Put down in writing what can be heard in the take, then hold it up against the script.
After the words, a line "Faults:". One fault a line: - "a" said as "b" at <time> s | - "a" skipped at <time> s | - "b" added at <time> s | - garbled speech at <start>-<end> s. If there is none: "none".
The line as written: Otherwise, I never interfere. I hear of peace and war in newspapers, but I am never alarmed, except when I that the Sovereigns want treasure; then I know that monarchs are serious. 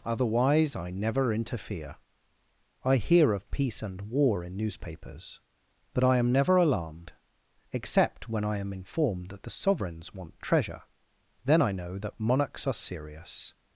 Otherwise, I never interfere. I hear of peace and war in newspapers, but I am never alarmed, except when I am informed that the Sovereigns want treasure; then I know that monarchs are serious.
Faults:
- "am informed" added at 8.6 s